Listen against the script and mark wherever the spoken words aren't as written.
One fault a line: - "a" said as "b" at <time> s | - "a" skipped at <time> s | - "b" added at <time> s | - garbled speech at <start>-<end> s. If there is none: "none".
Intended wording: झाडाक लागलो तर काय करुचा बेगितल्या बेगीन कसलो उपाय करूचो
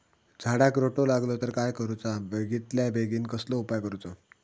- "रोटो" added at 0.8 s